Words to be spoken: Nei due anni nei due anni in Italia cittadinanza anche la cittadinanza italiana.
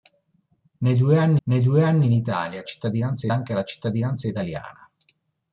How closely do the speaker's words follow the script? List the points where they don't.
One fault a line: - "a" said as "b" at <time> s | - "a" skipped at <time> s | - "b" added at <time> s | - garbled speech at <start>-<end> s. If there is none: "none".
none